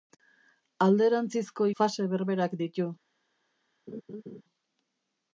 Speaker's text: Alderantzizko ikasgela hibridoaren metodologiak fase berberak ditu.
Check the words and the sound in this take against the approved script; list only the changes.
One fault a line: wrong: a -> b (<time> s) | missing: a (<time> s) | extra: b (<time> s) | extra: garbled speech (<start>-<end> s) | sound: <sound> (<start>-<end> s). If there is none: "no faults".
missing: ikasgela hibridoaren metodologiak (1.7 s)
sound: laugh (3.9-4.4 s)